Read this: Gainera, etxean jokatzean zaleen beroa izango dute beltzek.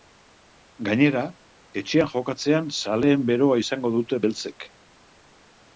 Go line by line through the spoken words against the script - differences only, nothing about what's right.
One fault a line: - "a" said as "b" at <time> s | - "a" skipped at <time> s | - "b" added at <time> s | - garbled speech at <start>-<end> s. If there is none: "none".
none